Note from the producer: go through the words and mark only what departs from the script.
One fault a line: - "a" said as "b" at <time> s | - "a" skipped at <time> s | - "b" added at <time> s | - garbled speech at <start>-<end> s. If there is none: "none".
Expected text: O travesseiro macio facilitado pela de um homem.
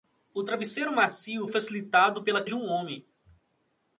none